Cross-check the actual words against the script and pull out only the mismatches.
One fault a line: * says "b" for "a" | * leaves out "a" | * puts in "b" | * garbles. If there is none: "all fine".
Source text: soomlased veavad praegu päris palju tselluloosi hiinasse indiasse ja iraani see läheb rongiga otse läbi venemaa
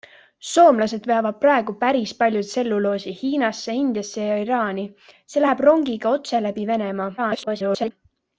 * garbles